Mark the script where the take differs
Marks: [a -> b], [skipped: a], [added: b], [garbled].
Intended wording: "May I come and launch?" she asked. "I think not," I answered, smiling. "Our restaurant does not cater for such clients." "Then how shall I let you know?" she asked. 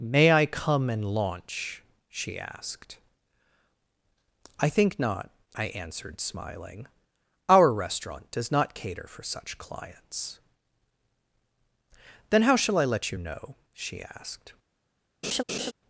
"May I come and launch?" she asked. "I think not," I answered, smiling. "Our restaurant does not cater for such clients." "Then how shall I let you know?" she asked.